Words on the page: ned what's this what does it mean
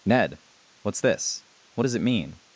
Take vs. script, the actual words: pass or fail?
pass